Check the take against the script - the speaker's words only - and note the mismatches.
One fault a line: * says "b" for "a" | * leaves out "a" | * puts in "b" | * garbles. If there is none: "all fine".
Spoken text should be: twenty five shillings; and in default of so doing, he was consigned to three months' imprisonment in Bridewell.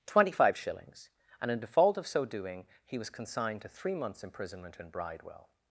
all fine